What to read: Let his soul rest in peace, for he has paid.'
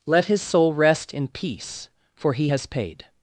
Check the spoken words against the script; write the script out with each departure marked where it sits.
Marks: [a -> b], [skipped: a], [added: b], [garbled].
Let his soul rest in peace, for he has paid.'